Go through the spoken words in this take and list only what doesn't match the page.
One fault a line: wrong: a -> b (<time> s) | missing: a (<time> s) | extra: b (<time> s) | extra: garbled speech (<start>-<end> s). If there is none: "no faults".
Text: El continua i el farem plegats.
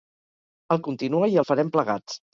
no faults